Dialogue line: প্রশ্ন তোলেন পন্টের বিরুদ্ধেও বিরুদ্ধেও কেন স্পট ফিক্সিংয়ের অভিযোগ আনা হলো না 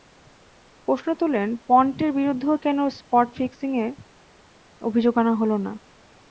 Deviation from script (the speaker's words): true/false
true